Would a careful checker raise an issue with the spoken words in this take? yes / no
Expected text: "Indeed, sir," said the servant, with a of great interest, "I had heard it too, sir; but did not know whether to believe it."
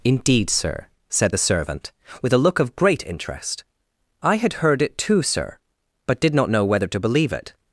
yes